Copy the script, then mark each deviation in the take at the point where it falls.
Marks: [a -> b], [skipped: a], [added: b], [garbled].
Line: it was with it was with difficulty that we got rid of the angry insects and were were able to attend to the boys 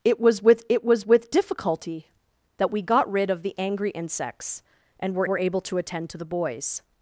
it was with it was with difficulty that we got rid of the angry insects and were were able to attend to the boys